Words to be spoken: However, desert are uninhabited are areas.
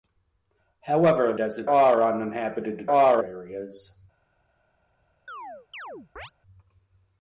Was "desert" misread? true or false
false